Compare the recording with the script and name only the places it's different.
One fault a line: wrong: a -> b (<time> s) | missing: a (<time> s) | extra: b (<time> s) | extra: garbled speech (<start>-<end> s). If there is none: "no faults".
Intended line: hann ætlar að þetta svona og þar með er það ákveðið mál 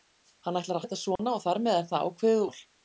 no faults